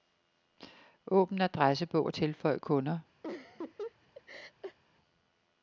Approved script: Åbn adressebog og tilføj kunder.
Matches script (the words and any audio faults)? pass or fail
fail